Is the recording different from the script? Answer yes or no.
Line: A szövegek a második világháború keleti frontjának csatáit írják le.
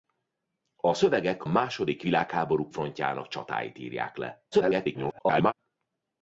yes